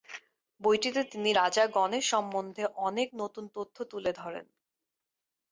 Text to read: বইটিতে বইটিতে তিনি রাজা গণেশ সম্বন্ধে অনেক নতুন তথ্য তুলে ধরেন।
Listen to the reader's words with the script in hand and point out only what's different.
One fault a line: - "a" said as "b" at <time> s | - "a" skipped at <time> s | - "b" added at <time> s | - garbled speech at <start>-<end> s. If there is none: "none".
- "বইটিতে" skipped at 1.0 s